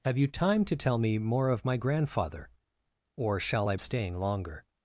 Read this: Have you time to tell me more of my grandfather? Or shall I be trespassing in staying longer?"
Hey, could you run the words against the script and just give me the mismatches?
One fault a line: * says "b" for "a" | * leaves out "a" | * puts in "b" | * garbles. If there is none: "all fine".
* leaves out "be trespassing in"